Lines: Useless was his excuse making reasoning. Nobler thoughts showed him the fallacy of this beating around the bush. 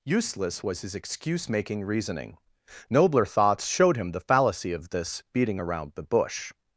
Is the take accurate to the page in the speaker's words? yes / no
yes